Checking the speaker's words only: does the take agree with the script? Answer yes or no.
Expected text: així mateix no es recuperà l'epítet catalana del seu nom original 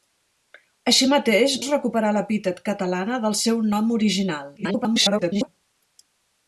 no